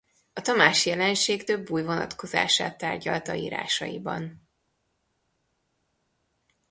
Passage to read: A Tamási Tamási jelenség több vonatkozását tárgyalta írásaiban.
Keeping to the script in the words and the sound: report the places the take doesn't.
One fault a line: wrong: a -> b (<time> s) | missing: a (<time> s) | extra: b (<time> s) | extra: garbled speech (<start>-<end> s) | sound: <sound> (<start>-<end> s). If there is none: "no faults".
missing: Tamási (0.9 s)
extra: új (1.7 s)